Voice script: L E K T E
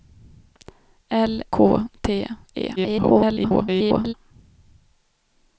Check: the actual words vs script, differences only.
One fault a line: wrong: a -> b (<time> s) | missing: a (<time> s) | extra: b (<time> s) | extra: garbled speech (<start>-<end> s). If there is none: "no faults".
missing: E (1.4 s)
extra: garbled speech (2.8-4.1 s)